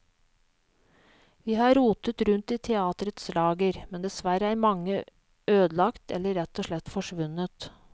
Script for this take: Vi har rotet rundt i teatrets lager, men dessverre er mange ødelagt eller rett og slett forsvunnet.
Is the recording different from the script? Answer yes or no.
no